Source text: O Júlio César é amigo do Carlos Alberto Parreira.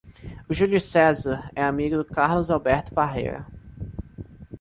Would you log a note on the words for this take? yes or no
no